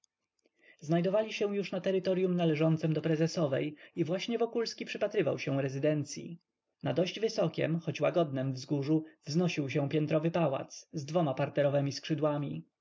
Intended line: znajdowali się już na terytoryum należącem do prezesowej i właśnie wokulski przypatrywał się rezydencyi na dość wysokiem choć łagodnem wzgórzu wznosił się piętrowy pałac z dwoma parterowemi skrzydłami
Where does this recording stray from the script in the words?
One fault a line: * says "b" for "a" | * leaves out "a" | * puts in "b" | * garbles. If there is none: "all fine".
all fine